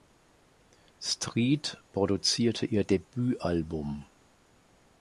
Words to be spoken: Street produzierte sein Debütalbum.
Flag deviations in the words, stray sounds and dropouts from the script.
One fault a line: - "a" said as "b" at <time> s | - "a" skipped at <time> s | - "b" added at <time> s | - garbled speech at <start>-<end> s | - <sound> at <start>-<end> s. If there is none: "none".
- "sein" said as "ihr" at 2.6 s